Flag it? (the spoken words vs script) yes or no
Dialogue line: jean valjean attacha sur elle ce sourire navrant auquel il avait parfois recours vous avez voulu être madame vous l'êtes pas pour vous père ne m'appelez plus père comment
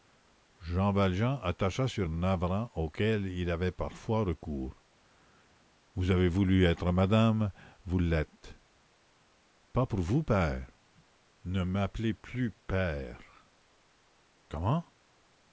yes